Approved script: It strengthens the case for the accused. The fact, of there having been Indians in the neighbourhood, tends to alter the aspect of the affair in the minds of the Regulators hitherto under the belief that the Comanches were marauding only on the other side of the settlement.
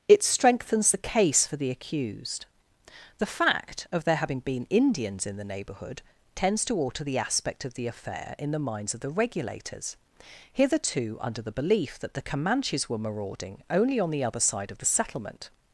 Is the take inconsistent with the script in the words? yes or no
no